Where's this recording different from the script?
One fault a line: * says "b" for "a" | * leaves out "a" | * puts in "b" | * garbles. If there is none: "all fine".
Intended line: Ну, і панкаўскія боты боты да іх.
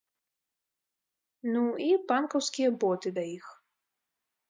* leaves out "боты"